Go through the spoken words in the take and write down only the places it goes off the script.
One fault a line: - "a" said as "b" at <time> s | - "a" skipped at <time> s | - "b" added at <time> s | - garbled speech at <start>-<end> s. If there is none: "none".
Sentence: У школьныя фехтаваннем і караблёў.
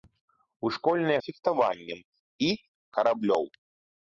none